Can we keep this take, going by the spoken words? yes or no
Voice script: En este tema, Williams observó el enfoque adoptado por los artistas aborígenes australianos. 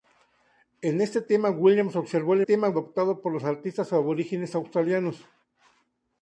no